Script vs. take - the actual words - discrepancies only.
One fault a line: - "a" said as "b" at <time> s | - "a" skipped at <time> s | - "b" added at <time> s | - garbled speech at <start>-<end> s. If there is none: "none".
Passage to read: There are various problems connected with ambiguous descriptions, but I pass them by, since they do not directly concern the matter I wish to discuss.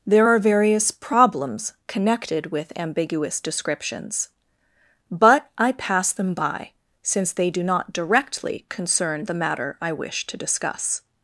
none